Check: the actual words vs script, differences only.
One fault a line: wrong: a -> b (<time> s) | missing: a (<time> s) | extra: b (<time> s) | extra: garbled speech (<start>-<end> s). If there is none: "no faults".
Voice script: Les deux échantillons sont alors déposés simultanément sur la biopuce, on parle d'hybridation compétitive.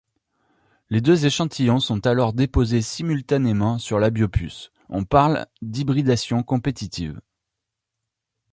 no faults